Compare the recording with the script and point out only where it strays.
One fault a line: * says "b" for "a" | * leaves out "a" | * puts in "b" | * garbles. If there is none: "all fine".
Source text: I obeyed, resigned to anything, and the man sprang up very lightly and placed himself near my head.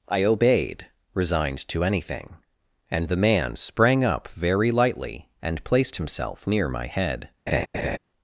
all fine